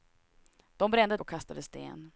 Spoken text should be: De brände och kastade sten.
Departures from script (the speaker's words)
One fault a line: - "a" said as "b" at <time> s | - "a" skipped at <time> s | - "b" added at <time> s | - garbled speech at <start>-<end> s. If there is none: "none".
none